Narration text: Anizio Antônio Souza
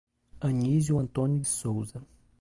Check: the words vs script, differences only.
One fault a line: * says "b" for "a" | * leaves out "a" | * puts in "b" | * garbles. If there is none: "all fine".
all fine